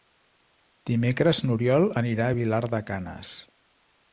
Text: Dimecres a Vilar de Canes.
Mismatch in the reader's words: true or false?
true